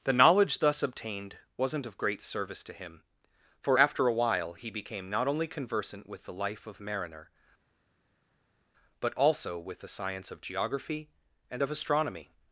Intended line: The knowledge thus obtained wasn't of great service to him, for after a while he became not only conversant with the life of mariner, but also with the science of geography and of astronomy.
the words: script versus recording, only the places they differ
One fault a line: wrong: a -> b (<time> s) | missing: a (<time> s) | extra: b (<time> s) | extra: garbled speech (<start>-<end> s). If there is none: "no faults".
no faults